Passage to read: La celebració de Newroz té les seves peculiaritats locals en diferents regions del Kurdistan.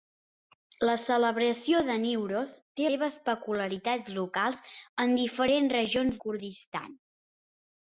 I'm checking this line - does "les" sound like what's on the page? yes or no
no